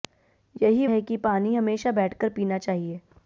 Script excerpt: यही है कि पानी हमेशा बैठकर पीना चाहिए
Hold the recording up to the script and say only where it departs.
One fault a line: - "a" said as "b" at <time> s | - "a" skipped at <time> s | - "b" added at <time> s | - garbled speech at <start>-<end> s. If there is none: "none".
none